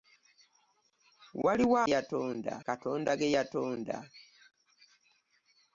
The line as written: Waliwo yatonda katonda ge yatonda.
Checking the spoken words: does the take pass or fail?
pass